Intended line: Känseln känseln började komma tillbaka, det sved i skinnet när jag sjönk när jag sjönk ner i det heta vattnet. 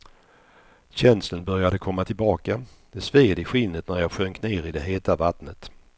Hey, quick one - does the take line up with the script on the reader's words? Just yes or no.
no